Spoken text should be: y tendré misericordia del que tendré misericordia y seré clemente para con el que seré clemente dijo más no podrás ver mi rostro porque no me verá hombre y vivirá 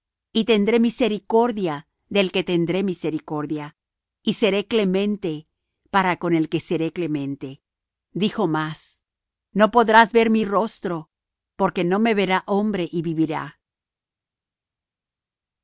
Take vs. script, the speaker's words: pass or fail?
pass